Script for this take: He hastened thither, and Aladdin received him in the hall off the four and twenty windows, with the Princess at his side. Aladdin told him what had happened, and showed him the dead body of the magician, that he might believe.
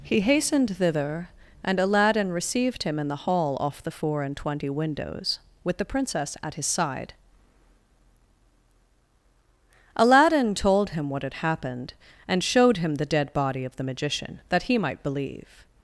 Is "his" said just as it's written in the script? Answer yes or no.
yes